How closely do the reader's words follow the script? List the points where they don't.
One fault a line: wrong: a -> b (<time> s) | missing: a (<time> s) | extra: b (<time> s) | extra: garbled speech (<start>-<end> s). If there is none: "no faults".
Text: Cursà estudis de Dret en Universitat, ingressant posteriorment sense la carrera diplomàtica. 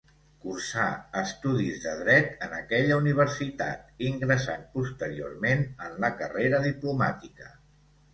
extra: aquella (2.6 s)
wrong: sense -> en (5.9 s)